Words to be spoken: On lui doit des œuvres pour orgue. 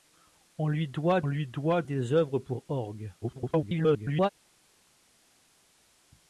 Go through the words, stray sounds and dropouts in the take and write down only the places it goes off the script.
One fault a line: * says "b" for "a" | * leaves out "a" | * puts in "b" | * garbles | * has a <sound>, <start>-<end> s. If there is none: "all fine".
* puts in "lui doit"
* garbles